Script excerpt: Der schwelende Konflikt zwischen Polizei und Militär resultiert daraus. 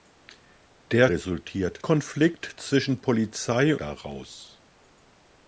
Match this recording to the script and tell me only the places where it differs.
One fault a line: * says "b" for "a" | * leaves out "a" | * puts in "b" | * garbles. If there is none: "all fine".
* says "resultiert" for "schwelende"
* leaves out "und Militär resultiert"